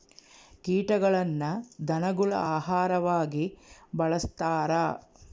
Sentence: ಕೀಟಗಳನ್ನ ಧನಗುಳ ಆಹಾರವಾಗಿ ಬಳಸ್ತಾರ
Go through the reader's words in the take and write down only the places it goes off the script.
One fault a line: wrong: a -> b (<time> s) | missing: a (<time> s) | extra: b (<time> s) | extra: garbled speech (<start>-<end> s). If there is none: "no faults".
no faults